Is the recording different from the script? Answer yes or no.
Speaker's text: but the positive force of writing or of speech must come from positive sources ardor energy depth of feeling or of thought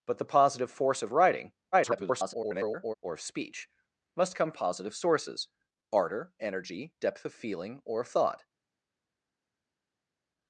yes